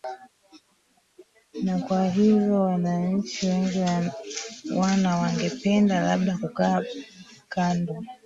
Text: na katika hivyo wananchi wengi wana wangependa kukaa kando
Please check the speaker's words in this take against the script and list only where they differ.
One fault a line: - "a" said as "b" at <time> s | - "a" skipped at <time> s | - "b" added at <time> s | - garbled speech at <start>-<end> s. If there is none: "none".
- "katika" said as "kwa" at 1.8 s
- "labda" added at 6.0 s